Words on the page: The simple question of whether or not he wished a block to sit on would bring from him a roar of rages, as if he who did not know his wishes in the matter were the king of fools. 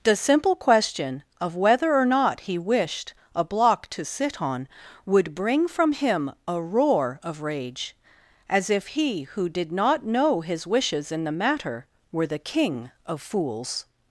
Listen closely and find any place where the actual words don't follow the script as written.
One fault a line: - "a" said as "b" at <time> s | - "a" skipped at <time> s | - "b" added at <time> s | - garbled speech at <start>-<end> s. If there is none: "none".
- "rages" said as "rage" at 7.4 s